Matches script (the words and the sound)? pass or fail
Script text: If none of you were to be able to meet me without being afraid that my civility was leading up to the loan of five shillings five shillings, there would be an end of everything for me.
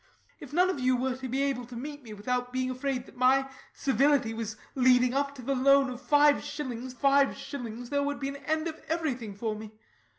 pass